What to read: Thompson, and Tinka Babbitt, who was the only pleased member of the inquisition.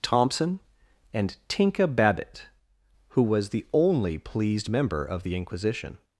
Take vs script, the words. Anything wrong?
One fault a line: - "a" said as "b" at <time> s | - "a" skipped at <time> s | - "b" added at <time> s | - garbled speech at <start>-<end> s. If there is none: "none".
none